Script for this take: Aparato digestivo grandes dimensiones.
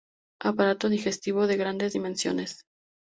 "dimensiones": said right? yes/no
yes